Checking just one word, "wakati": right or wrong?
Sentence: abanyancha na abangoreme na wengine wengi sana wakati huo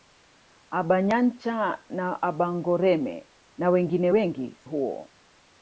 wrong